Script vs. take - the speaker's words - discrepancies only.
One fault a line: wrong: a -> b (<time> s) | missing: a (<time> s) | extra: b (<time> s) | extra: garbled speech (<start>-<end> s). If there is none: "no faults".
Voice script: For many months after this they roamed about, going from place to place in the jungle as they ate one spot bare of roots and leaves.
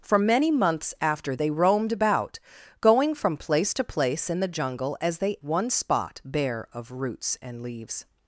missing: this (1.4 s)
missing: ate (5.4 s)